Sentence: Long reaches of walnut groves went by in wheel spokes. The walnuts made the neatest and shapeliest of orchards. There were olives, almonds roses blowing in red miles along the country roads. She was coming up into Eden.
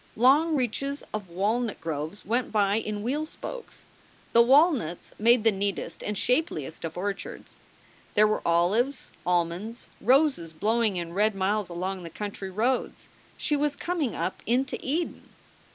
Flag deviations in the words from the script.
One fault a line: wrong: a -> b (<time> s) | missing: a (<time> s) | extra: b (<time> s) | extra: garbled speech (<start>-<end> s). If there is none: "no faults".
no faults